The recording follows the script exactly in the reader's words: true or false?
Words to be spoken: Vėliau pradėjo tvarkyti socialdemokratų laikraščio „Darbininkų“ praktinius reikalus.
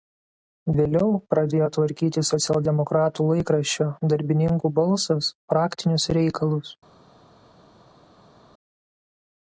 false